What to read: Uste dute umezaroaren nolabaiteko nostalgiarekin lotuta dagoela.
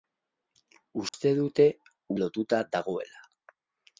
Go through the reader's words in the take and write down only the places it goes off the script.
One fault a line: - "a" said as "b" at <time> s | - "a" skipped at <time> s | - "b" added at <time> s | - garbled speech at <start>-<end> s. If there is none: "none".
- "umezaroaren nolabaiteko nostalgiarekin" skipped at 1.7 s